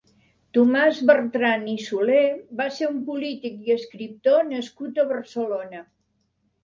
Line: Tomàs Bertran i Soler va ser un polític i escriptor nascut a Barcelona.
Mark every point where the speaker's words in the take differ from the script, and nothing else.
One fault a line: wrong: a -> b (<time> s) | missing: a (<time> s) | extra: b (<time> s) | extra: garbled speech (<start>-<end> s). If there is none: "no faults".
no faults